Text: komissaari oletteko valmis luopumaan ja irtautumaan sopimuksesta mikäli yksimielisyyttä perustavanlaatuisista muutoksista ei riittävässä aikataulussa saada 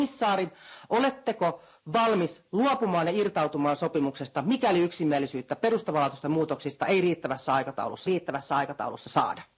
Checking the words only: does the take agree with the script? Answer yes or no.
no